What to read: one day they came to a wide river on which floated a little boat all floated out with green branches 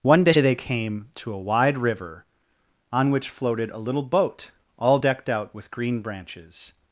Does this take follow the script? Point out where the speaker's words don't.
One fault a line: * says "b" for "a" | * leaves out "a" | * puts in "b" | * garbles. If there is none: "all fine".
* says "decked" for "floated"